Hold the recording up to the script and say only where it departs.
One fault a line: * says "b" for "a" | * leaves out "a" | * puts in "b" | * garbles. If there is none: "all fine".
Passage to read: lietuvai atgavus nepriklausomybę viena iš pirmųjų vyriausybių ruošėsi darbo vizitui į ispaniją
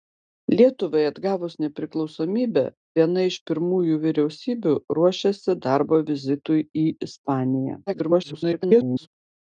* garbles